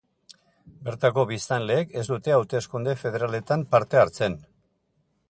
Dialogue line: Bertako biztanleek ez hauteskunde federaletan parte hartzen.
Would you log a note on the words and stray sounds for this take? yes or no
yes